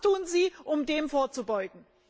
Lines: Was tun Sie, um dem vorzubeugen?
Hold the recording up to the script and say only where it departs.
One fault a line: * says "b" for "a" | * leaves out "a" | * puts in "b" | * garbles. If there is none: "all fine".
all fine